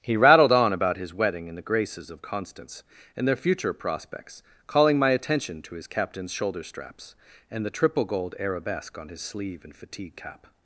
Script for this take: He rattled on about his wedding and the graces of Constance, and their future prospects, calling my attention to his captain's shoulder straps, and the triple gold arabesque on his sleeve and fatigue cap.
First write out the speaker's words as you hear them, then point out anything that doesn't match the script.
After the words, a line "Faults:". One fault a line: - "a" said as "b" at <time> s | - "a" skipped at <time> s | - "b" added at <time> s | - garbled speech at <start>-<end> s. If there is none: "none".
He rattled on about his wedding and the graces of Constance, and their future prospects, calling my attention to his captain's shoulder straps, and the triple gold arabesque on his sleeve and fatigue cap.
Faults:
none